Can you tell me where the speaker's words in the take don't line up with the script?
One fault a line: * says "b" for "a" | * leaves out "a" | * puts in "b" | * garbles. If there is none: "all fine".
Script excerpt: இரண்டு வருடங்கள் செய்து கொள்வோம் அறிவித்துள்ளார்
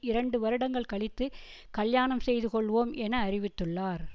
* puts in "கழித்து கல்யாணம்"
* puts in "என"